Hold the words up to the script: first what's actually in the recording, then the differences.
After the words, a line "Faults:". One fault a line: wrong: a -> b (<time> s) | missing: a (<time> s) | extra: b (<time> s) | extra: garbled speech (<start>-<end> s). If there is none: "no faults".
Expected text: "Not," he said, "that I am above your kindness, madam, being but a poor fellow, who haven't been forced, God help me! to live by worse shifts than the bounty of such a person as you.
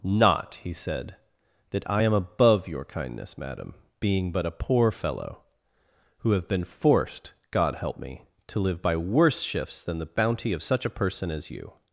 "Not," he said, "that I am above your kindness, madam, being but a poor fellow, who have been forced, God help me! to live by worse shifts than the bounty of such a person as you.
Faults:
wrong: haven't -> have (6.3 s)